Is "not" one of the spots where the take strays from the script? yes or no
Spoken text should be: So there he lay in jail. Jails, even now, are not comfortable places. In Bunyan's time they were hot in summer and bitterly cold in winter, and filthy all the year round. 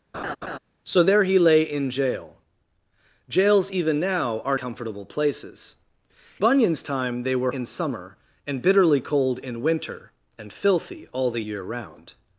yes